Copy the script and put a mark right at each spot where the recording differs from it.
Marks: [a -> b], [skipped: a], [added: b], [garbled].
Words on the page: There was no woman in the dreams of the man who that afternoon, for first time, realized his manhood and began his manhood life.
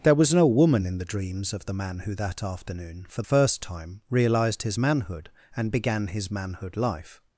There was no woman in the dreams of the man who that afternoon, for first time, realized his manhood and began his manhood life.